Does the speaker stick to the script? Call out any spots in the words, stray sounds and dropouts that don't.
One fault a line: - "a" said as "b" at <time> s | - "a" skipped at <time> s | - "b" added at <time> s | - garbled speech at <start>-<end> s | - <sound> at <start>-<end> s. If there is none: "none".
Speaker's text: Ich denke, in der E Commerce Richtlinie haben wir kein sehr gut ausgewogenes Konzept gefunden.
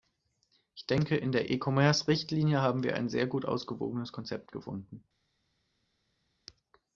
- "kein" said as "ein" at 3.0 s